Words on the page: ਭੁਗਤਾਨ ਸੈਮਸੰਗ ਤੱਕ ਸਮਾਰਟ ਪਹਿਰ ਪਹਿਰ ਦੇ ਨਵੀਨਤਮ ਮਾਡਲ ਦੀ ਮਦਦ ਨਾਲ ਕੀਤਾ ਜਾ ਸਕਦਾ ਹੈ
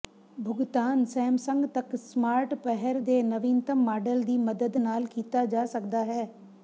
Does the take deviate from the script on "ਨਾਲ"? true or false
false